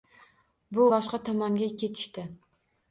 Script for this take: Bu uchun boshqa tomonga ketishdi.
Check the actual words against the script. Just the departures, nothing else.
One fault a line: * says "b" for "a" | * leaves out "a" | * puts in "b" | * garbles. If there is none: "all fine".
* leaves out "uchun"